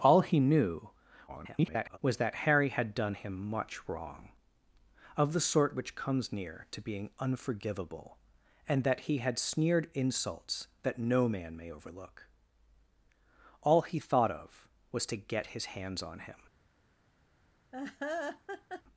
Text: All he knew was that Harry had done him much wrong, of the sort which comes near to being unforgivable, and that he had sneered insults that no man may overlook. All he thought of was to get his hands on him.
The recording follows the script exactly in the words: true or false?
false